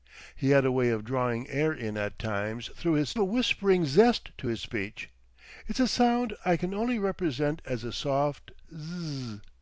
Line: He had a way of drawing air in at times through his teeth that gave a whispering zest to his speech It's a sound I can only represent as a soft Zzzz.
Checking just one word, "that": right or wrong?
wrong